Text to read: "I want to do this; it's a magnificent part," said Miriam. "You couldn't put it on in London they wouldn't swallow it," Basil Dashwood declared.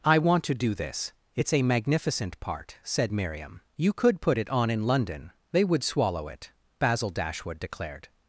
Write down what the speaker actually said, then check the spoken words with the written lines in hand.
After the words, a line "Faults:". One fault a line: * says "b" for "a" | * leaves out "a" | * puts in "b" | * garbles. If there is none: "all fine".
"I want to do this; it's a magnificent part," said Miriam. "You could put it on in London they would swallow it," Basil Dashwood declared.
Faults:
* says "could" for "couldn't"
* says "would" for "wouldn't"